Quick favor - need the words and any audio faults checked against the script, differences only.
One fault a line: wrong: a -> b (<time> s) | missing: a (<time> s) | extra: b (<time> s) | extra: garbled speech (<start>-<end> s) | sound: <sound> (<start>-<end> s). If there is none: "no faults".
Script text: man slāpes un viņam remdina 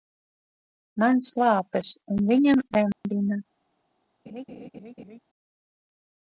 sound: dropout (2.9-3.0 s)
sound: laugh (4.3-5.2 s)